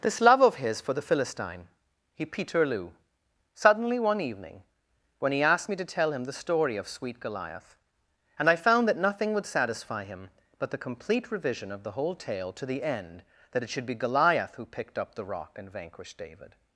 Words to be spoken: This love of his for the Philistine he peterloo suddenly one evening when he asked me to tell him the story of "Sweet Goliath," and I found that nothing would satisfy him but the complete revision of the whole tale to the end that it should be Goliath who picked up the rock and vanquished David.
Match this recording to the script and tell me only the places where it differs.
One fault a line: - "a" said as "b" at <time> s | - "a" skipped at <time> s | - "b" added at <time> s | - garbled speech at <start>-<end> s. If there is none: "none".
none